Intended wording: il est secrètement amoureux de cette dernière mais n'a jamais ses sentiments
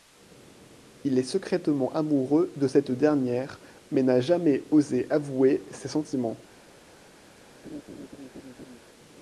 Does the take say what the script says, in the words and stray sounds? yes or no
no